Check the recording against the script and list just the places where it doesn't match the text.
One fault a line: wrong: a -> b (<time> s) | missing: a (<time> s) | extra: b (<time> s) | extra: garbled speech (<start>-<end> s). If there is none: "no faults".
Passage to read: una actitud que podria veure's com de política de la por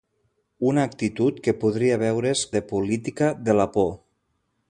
missing: com (2.4 s)